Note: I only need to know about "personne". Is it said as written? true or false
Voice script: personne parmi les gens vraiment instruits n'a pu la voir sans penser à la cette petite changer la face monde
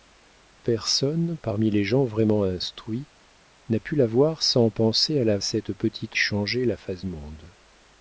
true